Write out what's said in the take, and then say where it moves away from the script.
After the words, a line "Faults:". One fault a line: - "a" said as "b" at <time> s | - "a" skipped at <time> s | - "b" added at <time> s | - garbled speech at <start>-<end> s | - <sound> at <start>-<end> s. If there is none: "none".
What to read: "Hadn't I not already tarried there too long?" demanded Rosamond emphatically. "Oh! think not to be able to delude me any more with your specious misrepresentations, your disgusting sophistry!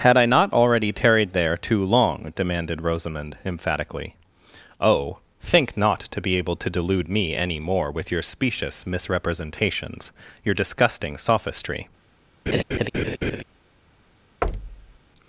"Had I not already tarried there too long?" demanded Rosamond emphatically. "Oh! think not to be able to delude me any more with your specious misrepresentations, your disgusting sophistry!
Faults:
- "Hadn't" said as "Had" at 0.0 s
- laugh at 12.5-13.4 s
- thud at 14.4-15.0 s